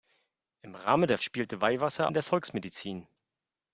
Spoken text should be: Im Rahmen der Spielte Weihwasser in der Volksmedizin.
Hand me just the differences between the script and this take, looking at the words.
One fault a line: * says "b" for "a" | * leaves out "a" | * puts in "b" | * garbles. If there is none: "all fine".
all fine